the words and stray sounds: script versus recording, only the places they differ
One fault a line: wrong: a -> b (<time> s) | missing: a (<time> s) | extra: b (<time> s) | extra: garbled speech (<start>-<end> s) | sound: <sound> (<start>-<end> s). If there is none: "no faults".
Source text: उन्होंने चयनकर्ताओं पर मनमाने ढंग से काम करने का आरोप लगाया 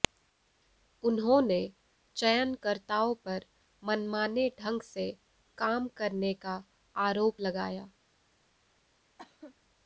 sound: cough (9.2-9.5 s)